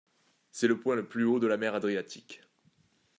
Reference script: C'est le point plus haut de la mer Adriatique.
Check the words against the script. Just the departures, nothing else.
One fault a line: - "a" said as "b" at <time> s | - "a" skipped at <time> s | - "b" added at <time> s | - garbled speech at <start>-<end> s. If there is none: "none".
- "le" added at 0.9 s